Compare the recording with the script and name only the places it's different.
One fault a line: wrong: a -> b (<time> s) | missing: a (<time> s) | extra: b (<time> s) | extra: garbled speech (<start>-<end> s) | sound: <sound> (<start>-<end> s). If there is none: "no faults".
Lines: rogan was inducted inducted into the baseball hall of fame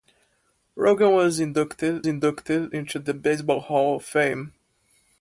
no faults